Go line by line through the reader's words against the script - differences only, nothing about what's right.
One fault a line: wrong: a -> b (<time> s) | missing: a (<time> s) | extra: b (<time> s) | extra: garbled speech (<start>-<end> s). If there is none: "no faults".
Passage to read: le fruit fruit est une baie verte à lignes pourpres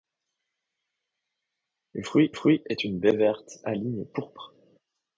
no faults